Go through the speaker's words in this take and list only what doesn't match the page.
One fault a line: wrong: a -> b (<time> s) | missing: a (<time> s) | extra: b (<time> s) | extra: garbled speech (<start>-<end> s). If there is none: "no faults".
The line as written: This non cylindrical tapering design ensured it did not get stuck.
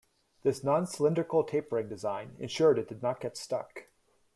no faults